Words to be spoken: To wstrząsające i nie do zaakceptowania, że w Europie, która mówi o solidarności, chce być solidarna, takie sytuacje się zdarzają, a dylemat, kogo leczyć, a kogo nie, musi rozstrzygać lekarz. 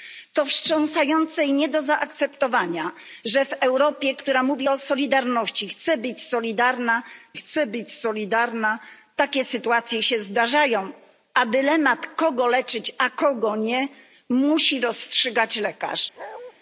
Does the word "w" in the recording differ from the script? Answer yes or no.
no